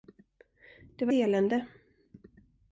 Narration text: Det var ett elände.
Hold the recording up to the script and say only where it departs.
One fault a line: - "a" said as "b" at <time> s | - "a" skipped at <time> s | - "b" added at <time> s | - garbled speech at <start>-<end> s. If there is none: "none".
- "ett" skipped at 1.1 s